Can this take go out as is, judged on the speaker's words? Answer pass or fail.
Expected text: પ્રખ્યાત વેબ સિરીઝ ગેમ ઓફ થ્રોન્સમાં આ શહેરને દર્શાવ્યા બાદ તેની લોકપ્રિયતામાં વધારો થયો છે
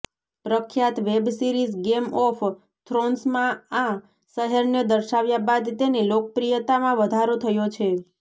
pass